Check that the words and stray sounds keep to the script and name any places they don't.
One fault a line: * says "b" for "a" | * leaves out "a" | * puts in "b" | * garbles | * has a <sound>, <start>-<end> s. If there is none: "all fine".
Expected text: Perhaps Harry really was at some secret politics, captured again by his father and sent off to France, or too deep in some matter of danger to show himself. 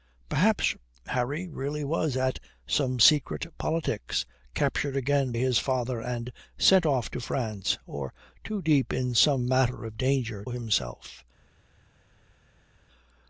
* leaves out "by"
* leaves out "to show"